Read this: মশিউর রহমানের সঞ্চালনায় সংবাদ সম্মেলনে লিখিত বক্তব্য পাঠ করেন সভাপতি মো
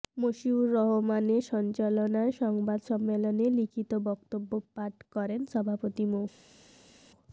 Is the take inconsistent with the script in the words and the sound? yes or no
no